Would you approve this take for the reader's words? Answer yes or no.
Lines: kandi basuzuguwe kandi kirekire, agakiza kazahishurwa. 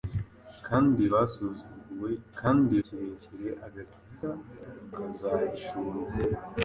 yes